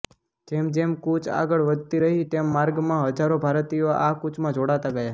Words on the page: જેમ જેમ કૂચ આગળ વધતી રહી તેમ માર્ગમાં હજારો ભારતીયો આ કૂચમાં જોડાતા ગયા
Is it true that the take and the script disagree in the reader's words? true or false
false